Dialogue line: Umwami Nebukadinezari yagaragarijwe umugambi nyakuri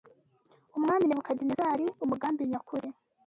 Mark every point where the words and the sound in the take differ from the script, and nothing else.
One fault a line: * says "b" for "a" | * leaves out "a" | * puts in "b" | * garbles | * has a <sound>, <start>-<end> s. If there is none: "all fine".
* leaves out "yagaragarijwe"